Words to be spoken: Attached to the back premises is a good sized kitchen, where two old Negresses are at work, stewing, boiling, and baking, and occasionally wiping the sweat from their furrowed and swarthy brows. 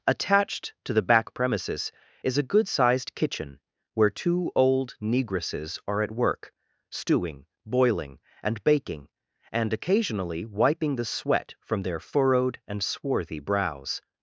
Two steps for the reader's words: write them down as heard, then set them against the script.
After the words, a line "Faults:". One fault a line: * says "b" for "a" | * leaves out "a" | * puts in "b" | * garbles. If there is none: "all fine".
Attached to the back premises is a good sized kitchen, where two old Negresses are at work, stewing, boiling, and baking, and occasionally wiping the sweat from their furrowed and swarthy brows.
Faults:
all fine